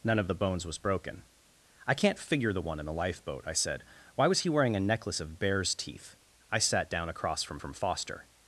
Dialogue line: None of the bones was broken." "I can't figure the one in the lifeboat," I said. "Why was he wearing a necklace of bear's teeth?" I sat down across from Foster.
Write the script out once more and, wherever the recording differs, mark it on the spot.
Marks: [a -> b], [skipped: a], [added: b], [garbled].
None of the bones was broken." "I can't figure the one in the lifeboat," I said. "Why was he wearing a necklace of bear's teeth?" I sat down across from [added: from] Foster.